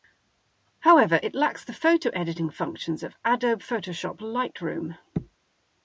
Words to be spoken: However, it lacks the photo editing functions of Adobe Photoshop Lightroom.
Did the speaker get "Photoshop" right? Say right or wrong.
right